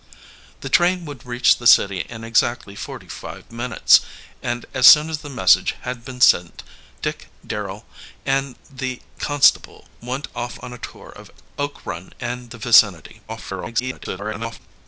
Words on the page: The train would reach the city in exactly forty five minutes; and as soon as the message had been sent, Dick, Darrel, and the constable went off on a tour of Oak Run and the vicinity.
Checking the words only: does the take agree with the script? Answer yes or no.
no